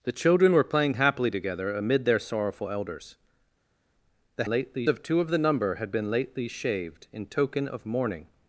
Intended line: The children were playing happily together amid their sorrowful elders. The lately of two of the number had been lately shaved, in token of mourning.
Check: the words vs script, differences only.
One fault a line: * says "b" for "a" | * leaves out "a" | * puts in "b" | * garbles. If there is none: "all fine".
all fine